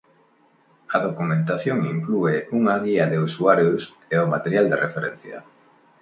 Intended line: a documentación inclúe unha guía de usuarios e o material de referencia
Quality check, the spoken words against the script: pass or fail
pass